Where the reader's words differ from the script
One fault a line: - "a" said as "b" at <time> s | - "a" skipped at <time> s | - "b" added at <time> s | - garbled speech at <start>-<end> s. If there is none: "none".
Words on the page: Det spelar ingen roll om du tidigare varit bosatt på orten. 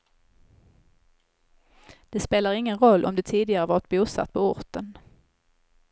none